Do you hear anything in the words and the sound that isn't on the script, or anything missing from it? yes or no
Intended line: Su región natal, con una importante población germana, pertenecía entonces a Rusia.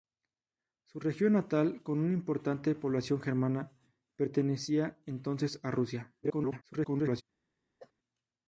yes